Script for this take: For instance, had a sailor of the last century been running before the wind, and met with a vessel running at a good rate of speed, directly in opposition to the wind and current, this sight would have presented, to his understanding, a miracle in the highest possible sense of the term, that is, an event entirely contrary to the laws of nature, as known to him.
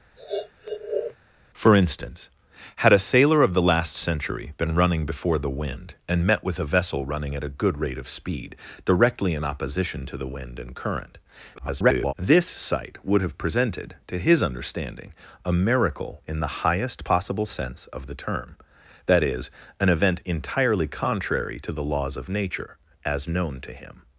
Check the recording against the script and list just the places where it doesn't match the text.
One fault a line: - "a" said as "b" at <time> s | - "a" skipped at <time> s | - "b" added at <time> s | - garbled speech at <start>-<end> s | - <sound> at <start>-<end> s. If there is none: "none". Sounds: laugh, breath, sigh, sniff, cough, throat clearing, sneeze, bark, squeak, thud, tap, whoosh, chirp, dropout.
- sniff at 0.1-1.2 s
- garbled speech at 11.6-12.1 s